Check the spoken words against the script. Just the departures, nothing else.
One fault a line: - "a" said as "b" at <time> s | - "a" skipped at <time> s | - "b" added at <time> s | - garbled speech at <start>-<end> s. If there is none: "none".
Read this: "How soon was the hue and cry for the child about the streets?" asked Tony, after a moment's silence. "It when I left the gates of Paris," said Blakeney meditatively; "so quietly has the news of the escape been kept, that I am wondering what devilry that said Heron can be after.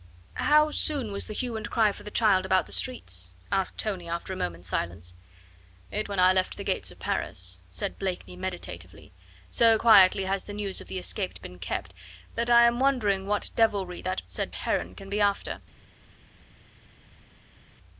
none